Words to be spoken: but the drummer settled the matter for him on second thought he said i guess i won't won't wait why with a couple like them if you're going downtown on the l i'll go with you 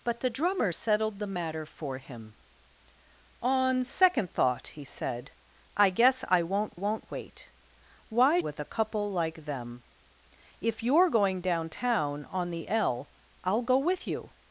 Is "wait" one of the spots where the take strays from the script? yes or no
no